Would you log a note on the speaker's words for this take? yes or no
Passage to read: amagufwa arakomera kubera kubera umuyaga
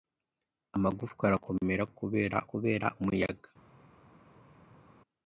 no